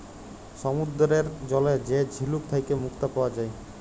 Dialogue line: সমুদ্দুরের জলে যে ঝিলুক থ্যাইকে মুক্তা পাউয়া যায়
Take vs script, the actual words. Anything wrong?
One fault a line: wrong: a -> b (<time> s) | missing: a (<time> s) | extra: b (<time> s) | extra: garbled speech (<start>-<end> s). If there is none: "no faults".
no faults